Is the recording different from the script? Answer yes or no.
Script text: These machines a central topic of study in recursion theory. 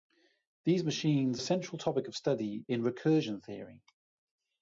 no